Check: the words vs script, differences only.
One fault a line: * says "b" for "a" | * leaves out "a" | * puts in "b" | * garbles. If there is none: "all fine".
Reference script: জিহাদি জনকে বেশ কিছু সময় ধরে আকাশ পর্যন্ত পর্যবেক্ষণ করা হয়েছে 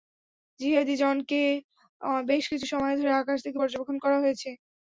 * says "থেকে" for "পর্যন্ত"